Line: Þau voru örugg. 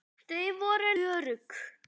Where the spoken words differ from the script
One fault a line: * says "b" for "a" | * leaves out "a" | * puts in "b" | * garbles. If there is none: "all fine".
all fine